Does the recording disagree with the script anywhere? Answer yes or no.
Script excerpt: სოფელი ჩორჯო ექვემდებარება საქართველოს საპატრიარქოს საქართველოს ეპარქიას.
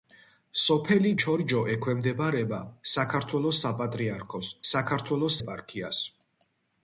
no